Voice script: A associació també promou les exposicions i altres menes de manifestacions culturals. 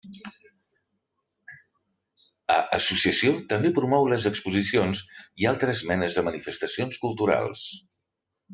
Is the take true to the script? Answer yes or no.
yes